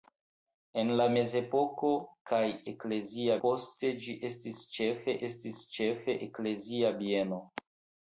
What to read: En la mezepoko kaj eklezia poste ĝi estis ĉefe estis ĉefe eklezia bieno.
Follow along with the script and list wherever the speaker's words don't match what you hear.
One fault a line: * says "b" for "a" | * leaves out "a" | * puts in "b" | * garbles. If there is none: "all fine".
all fine